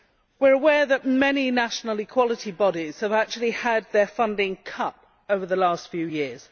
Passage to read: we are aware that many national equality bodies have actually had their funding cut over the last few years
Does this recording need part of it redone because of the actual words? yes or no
no